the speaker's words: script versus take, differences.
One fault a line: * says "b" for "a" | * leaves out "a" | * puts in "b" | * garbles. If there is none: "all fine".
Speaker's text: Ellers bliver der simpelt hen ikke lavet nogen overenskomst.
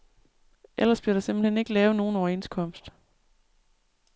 all fine